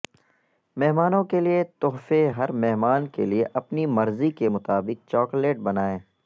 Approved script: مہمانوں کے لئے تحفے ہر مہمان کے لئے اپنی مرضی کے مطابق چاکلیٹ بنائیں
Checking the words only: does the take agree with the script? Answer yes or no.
yes